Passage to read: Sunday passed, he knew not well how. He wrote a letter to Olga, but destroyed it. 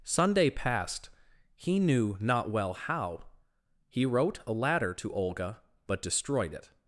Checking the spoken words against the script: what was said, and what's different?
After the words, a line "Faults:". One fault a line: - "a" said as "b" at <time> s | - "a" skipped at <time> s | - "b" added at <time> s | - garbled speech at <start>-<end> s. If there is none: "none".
Sunday passed, he knew not well how. He wrote a ladder to Olga, but destroyed it.
Faults:
- "letter" said as "ladder" at 4.5 s